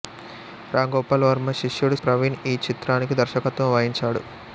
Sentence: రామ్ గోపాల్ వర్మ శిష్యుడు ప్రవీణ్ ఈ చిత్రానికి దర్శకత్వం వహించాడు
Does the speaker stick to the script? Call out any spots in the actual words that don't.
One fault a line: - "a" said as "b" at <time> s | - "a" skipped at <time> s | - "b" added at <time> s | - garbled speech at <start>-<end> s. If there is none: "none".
none